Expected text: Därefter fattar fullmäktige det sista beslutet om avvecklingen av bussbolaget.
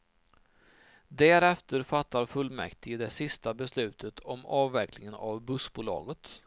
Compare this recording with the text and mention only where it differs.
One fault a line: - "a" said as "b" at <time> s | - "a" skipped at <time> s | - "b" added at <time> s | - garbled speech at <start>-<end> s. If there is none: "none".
none